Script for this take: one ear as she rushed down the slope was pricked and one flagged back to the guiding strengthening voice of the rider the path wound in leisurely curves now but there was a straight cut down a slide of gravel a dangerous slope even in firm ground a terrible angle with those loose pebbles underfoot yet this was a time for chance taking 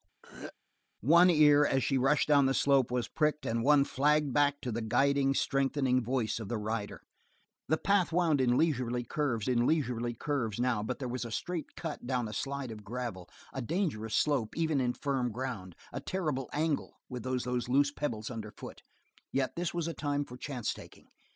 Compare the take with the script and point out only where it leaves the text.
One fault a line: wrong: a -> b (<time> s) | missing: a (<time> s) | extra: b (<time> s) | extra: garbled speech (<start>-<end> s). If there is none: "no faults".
extra: in leisurely curves (9.5 s)
extra: those (17.4 s)